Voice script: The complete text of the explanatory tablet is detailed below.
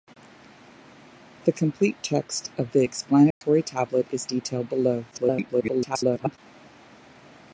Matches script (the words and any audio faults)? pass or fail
fail